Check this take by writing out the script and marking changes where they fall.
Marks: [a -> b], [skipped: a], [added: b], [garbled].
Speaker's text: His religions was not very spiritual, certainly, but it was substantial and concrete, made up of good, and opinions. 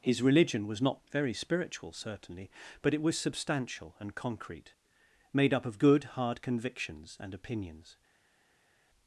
His [religions -> religion] was not very spiritual, certainly, but it was substantial and concrete, made up of good, [added: hard convictions] and opinions.